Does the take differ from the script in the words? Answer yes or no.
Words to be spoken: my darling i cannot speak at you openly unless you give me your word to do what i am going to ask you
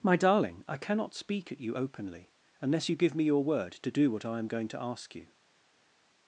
no